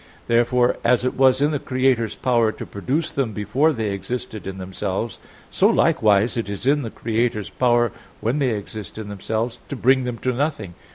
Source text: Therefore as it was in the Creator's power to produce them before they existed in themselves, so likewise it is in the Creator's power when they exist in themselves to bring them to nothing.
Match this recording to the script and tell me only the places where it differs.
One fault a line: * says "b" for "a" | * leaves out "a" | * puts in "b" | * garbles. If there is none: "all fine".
all fine